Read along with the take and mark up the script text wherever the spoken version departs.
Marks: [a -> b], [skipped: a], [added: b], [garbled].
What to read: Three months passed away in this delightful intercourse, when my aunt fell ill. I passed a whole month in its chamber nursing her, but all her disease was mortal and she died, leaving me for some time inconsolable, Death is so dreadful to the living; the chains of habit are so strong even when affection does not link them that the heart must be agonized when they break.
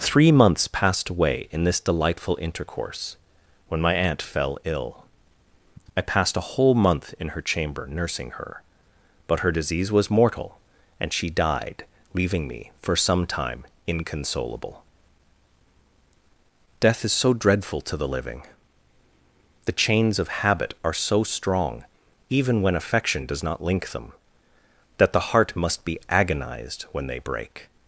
Three months passed away in this delightful intercourse, when my aunt fell ill. I passed a whole month in [its -> her] chamber nursing her, but [skipped: all] her disease was mortal and she died, leaving me for some time inconsolable, Death is so dreadful to the living; the chains of habit are so strong even when affection does not link them that the heart must be agonized when they break.